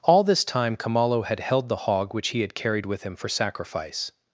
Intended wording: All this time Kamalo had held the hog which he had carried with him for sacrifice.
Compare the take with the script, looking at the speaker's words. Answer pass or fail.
pass